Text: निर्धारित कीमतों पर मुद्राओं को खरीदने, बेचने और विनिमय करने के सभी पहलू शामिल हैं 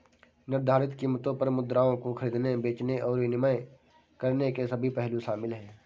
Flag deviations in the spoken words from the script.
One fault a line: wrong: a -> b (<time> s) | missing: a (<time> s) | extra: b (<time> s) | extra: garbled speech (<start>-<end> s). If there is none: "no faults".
no faults